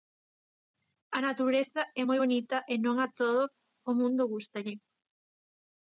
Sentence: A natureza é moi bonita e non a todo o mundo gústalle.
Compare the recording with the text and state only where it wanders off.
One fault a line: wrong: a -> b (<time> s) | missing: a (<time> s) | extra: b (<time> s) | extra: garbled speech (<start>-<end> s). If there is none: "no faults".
no faults